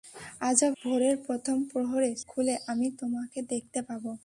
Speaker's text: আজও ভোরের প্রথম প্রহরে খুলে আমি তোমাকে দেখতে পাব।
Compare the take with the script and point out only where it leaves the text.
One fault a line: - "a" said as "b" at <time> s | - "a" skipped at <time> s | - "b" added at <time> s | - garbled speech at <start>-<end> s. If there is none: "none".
none